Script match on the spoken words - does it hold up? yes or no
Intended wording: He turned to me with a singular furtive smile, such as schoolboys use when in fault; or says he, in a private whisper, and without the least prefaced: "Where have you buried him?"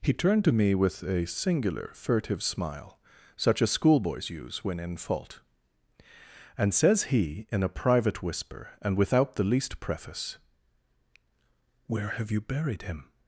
no